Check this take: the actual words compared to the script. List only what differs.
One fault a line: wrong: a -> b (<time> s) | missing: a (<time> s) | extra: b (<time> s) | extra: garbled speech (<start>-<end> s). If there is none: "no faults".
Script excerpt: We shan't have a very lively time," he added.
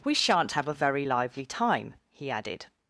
no faults